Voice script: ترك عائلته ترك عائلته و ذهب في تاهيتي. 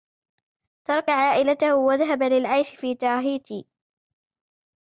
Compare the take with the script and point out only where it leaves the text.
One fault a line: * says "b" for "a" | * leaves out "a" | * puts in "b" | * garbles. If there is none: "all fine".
* leaves out "ترك عائلته"
* puts in "للعيش"